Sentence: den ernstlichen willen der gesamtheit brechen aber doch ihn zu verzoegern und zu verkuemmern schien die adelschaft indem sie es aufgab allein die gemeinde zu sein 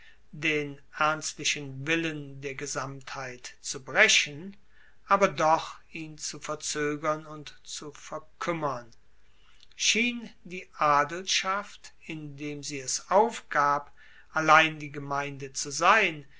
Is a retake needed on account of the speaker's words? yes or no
yes